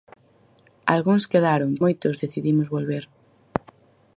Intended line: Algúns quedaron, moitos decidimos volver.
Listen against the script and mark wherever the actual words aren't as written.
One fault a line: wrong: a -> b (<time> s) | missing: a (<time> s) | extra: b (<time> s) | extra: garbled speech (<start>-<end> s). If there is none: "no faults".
no faults